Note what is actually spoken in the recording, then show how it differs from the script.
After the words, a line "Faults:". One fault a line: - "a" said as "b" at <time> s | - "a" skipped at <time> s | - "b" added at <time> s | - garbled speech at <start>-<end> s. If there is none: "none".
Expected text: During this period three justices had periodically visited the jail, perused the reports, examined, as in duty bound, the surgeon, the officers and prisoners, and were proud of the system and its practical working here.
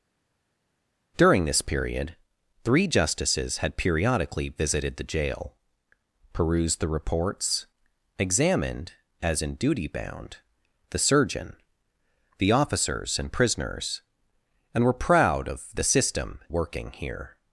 During this period three justices had periodically visited the jail, perused the reports, examined, as in duty bound, the surgeon, the officers and prisoners, and were proud of the system working here.
Faults:
- "and its practical" skipped at 16.4 s